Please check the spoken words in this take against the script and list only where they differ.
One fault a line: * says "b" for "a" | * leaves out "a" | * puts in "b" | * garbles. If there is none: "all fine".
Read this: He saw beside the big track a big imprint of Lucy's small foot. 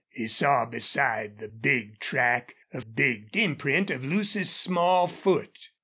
all fine